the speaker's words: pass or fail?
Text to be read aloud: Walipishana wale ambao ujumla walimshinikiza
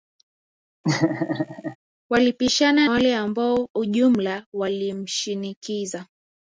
pass